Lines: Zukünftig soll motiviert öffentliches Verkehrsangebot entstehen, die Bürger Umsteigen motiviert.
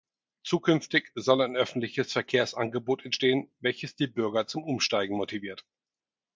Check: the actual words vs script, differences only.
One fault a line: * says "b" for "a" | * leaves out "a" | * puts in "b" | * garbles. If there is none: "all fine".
* says "ein" for "motiviert"
* puts in "welches"
* puts in "zum"